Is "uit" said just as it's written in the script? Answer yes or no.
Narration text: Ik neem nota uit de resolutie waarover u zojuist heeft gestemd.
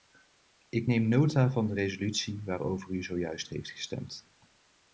no